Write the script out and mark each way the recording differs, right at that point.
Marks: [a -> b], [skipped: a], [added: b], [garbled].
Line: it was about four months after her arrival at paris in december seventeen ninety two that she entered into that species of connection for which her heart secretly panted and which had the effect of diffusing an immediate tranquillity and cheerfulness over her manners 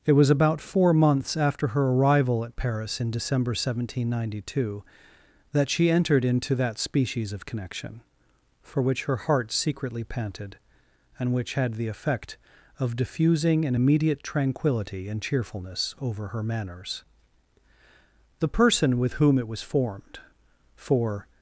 it was about four months after her arrival at paris in december seventeen ninety two that she entered into that species of connection for which her heart secretly panted and which had the effect of diffusing an immediate tranquillity and cheerfulness over her manners [added: the person with whom it was formed for]